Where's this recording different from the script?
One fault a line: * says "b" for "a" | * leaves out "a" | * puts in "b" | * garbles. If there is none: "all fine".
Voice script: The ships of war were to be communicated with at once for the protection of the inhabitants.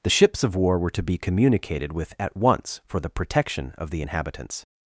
all fine